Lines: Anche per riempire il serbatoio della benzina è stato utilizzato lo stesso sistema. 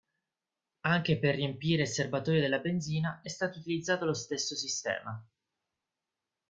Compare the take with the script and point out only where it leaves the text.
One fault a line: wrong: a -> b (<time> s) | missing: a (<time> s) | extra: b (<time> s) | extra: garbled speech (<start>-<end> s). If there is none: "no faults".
no faults